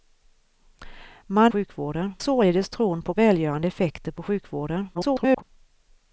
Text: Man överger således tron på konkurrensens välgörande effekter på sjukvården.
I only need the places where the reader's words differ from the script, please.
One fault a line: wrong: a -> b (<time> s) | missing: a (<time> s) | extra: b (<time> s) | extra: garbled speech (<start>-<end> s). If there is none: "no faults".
wrong: överger -> sjukvården (1.5 s)
missing: konkurrensens (3.1 s)
extra: garbled speech (4.9-5.4 s)